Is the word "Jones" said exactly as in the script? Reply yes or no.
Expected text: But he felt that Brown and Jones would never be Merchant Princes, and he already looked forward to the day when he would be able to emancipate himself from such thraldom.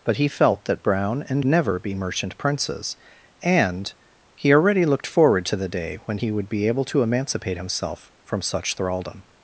no